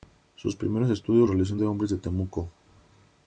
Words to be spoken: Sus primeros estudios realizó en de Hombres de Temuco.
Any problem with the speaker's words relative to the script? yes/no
no